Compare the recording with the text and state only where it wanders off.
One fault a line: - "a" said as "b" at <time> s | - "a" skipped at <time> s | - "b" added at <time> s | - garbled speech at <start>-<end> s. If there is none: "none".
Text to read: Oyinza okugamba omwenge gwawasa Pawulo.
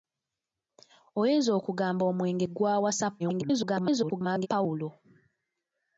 - garbled speech at 3.2-4.5 s